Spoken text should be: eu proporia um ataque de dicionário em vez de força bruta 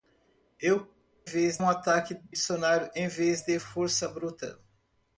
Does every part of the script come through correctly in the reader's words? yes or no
no